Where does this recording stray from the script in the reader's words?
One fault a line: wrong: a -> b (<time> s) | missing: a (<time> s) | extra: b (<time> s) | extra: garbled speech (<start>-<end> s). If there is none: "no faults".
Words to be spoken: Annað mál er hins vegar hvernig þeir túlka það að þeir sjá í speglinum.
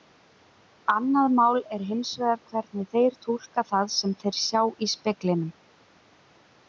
wrong: að -> sem (4.0 s)